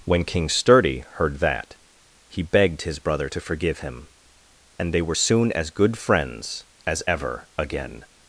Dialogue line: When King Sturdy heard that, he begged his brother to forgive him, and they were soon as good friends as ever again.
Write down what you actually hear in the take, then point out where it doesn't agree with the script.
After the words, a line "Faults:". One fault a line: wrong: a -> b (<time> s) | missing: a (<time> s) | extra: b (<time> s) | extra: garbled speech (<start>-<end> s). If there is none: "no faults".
When King Sturdy heard that, he begged his brother to forgive him, and they were soon as good friends as ever again.
Faults:
no faults